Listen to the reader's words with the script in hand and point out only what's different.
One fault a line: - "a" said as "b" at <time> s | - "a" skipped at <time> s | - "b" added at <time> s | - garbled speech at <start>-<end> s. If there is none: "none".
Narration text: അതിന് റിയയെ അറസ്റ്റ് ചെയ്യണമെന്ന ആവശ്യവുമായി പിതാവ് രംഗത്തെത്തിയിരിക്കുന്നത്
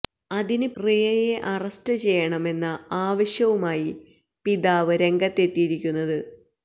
none